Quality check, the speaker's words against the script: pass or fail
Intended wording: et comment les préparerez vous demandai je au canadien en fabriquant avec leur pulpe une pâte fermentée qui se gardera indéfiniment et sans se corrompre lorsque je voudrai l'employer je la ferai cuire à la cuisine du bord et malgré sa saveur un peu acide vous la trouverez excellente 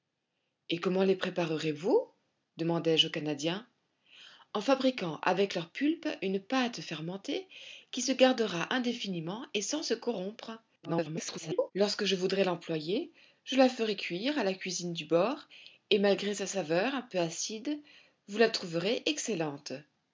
fail